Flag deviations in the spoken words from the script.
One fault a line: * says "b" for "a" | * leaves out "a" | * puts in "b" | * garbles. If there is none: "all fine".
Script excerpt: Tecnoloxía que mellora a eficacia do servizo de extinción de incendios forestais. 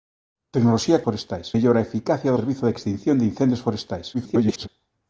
* says "forestais" for "que"
* leaves out "do"
* garbles